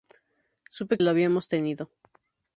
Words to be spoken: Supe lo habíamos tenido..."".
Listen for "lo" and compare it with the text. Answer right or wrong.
right